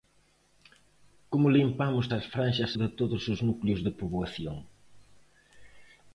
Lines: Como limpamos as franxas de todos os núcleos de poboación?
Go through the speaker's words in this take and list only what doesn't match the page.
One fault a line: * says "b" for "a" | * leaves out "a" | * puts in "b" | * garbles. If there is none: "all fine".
all fine